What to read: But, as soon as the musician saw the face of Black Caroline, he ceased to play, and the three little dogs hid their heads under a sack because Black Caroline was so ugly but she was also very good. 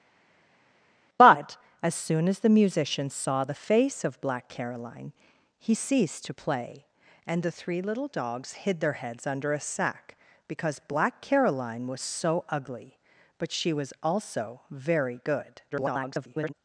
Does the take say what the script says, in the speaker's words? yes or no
no